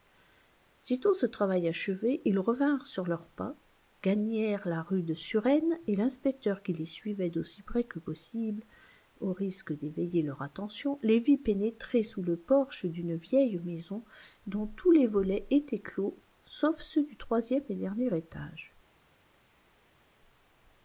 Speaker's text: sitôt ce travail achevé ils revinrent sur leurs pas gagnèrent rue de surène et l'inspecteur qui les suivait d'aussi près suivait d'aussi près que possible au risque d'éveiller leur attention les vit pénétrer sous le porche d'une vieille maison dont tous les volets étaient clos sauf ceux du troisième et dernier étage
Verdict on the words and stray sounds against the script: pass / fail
fail